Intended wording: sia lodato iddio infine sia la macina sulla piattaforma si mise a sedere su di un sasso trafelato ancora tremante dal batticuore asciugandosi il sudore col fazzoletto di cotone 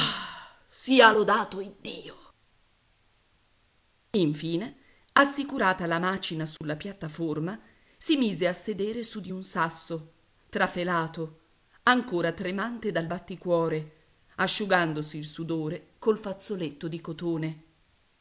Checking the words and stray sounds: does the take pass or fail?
fail